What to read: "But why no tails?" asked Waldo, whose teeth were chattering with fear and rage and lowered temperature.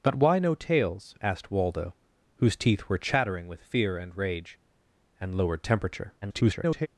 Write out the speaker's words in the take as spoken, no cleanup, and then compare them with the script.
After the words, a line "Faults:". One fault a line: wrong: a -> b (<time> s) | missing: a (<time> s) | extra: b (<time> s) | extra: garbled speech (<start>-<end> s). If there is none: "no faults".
"But why no tails?" asked Waldo, whose teeth were chattering with fear and rage and lowered temperature. [garbled]
Faults:
extra: garbled speech (6.2-6.9 s)